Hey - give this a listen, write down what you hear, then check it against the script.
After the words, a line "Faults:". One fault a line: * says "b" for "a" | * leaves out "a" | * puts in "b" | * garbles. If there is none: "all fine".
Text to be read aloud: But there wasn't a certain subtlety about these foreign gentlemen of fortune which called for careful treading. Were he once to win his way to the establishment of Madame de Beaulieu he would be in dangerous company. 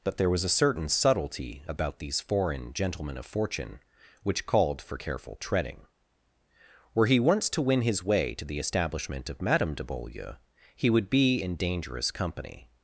But there was a certain subtlety about these foreign gentlemen of fortune which called for careful treading. Were he once to win his way to the establishment of Madame de Beaulieu he would be in dangerous company.
Faults:
* says "was" for "wasn't"